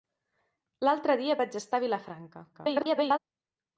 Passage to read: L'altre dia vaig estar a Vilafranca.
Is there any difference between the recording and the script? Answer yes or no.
yes